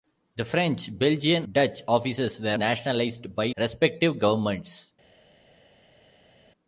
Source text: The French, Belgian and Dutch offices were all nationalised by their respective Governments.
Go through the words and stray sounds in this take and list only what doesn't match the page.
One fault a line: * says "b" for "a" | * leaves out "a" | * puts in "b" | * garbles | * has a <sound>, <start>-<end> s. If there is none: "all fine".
* leaves out "and"
* leaves out "all"
* leaves out "their"